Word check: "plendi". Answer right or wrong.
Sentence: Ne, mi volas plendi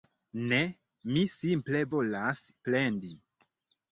right